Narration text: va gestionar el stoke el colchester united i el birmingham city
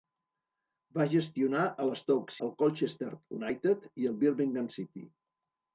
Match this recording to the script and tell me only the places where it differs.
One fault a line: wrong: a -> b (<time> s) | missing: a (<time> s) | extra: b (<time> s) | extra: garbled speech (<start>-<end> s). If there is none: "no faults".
no faults